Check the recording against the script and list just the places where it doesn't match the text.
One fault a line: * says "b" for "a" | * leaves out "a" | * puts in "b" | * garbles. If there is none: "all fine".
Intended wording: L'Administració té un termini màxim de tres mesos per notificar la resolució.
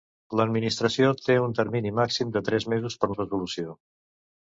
* leaves out "notificar"